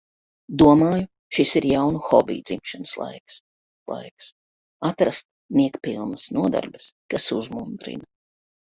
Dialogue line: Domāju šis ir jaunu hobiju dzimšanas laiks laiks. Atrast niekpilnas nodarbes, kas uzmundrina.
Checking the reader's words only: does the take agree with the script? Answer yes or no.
yes